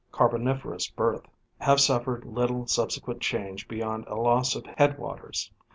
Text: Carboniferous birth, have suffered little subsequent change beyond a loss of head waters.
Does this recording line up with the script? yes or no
yes